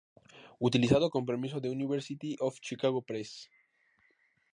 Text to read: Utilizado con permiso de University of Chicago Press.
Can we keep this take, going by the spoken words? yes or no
yes